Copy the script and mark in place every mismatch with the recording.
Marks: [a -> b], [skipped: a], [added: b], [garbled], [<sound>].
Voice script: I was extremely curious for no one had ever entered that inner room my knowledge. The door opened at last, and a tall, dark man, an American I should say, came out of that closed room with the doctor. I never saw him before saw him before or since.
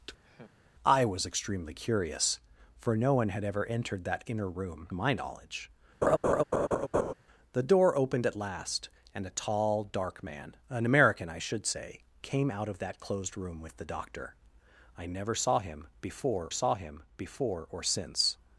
[laugh] I was extremely curious for no one had ever entered that inner room my knowledge. [laugh] The door opened at last, and a tall, dark man, an American I should say, came out of that closed room with the doctor. I never saw him before saw him before or since.